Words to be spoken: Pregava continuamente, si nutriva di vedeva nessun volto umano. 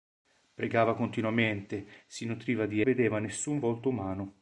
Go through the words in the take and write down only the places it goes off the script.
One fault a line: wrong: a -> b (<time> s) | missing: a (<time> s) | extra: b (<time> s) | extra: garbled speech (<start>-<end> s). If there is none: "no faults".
no faults